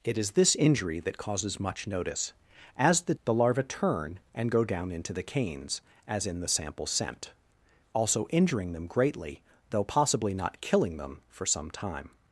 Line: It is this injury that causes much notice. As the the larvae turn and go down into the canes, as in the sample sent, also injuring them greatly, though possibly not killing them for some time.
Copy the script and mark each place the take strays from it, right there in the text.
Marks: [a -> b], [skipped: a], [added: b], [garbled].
It is this injury that causes much notice. As the the larvae turn and go down into the canes, as in the sample sent, also injuring them greatly, though possibly not killing them for some time.